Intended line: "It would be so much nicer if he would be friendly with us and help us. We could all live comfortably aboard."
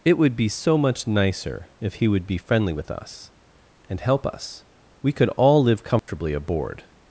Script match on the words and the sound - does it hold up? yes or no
no